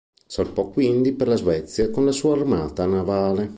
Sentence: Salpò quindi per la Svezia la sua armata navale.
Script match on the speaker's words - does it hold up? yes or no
no